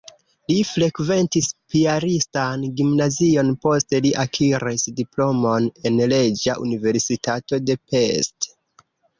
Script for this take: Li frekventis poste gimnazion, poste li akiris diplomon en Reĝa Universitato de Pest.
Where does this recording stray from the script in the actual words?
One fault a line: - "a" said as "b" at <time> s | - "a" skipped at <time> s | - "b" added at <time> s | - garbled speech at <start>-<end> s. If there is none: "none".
- "poste" said as "piaristan" at 1.7 s